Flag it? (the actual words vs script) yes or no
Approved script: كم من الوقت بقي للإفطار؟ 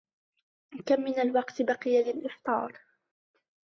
no